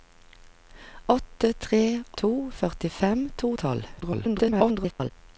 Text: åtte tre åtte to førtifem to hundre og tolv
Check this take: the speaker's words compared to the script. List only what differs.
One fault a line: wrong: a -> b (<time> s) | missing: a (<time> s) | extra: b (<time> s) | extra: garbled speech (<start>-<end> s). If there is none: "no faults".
missing: åtte (1.8 s)
missing: hundre (3.5 s)
extra: garbled speech (4.0-5.1 s)